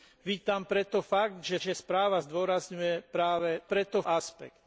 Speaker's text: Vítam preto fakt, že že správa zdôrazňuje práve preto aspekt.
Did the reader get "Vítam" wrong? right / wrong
right